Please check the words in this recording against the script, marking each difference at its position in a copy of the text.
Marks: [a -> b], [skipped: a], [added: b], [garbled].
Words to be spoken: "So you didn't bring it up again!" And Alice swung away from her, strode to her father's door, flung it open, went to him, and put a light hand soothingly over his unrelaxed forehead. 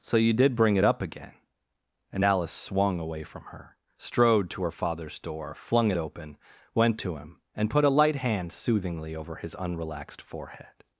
"So you [didn't -> did] bring it up again!" And Alice swung away from her, strode to her father's door, flung it open, went to him, and put a light hand soothingly over his unrelaxed forehead.